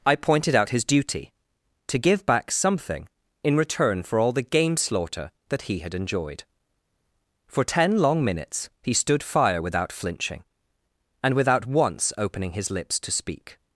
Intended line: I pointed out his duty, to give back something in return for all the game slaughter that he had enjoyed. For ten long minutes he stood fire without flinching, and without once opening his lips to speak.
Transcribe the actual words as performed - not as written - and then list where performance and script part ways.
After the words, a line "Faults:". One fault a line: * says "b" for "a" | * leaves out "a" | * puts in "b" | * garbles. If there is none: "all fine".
I pointed out his duty, to give back something in return for all the game slaughter that he had enjoyed. For ten long minutes he stood fire without flinching, and without once opening his lips to speak.
Faults:
all fine